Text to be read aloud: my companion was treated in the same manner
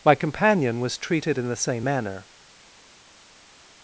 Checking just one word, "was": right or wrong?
right